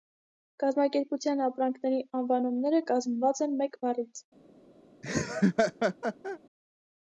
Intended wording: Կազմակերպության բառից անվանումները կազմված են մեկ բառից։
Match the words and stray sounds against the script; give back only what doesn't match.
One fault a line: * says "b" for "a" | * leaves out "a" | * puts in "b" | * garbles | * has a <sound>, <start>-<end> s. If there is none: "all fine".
* says "ապրանքների" for "բառից"
* has a laugh, 5.0-6.4 s